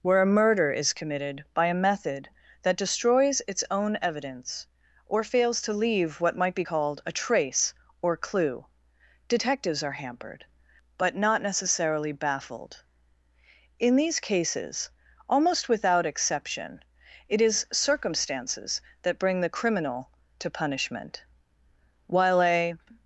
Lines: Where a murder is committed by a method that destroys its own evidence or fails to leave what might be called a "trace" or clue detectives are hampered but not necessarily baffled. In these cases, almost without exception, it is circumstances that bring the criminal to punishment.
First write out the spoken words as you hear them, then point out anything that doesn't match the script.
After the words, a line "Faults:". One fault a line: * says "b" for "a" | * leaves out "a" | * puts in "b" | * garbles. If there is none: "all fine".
Where a murder is committed by a method that destroys its own evidence or fails to leave what might be called a "trace" or clue detectives are hampered but not necessarily baffled. In these cases, almost without exception, it is circumstances that bring the criminal to punishment. While a
Faults:
* puts in "While a"